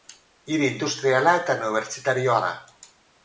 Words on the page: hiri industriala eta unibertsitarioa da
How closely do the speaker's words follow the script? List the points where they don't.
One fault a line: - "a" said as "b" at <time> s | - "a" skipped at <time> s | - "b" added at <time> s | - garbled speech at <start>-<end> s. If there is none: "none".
none